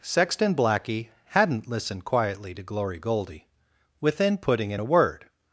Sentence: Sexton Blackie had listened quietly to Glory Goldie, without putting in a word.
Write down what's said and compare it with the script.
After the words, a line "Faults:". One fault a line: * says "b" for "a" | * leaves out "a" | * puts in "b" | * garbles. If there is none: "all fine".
Sexton Blackie hadn't listened quietly to Glory Goldie, within putting in a word.
Faults:
* says "hadn't" for "had"
* says "within" for "without"